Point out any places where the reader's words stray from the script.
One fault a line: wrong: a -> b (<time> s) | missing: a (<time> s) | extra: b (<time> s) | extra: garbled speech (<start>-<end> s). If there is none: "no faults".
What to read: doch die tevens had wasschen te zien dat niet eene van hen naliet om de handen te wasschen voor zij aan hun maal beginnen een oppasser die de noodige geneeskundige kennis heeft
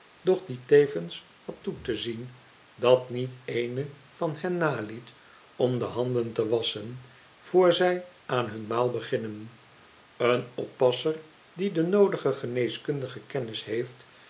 wrong: wasschen -> toe (1.6 s)